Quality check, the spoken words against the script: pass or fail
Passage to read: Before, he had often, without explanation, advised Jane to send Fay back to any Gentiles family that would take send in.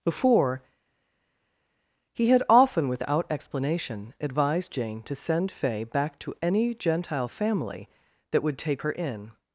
fail